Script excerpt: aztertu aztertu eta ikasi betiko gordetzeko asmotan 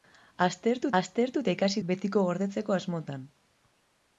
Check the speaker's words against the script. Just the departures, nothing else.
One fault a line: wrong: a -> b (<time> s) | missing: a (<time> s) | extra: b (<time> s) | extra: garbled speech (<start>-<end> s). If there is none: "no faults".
no faults